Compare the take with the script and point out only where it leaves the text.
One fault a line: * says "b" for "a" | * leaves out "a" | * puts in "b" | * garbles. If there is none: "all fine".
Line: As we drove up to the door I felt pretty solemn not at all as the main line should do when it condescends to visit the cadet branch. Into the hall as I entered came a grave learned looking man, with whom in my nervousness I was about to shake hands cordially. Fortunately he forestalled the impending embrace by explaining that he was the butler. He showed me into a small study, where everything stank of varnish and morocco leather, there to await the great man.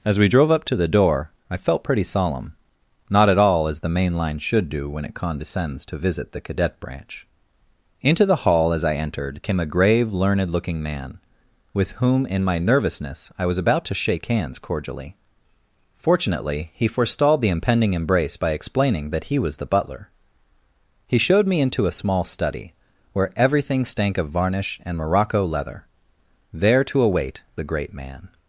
all fine